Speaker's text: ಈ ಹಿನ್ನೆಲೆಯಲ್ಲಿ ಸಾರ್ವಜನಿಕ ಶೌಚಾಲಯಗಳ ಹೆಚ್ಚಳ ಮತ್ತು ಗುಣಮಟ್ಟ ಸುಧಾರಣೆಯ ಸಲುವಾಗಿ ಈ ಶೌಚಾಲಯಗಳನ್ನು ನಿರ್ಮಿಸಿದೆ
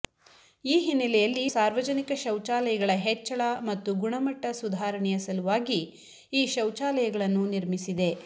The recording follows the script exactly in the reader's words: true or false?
true